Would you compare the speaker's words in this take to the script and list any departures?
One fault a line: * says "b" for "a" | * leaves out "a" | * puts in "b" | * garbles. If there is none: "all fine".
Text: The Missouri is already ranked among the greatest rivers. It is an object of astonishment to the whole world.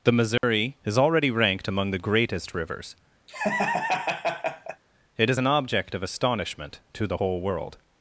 all fine